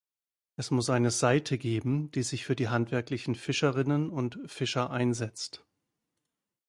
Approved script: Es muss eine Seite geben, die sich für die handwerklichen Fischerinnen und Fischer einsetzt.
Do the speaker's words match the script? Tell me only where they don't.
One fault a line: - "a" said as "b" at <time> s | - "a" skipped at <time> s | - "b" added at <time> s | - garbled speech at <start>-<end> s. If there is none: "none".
none